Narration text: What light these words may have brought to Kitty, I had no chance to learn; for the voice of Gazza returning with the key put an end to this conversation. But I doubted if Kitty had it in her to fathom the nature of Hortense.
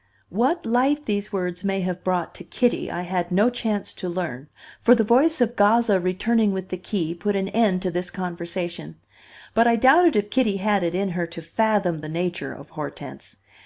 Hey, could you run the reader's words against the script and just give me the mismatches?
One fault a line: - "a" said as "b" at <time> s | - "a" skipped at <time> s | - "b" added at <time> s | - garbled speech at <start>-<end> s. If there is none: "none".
none